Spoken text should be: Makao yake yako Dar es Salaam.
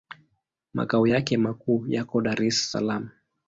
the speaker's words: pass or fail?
fail